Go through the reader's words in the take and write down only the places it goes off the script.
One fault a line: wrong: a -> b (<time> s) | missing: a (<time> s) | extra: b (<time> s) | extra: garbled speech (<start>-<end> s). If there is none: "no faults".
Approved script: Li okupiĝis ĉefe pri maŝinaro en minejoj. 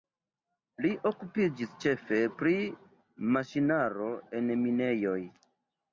no faults